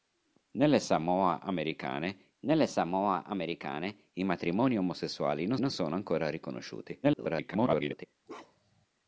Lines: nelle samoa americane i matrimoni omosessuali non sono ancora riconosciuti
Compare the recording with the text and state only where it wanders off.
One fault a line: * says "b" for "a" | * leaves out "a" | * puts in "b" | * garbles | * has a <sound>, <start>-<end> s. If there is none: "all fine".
* puts in "nelle samoa americane"
* puts in "non"
* garbles
* has a bark, 8.3-8.9 s